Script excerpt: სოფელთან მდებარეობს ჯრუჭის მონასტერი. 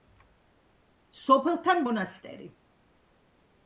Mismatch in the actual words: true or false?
true